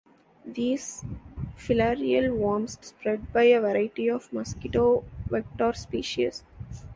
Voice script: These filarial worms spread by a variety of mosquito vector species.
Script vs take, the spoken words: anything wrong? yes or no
no